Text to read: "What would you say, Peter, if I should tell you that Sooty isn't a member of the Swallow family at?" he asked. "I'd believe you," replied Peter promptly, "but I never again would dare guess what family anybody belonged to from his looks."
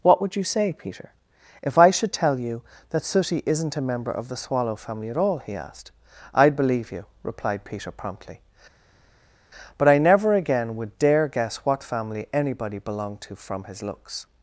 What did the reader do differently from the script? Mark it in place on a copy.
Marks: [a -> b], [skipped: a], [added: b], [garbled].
"What would you say, Peter, if I should tell you that Sooty isn't a member of the Swallow family at?" [added: all] he asked. "I'd believe you," replied Peter promptly, "but I never again would dare guess what family anybody belonged to from his looks."